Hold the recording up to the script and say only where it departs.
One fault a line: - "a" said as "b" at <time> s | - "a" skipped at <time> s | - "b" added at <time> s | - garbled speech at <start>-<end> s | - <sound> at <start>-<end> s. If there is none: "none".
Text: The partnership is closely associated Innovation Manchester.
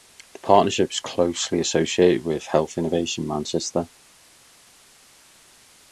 - "with Health" added at 2.2 s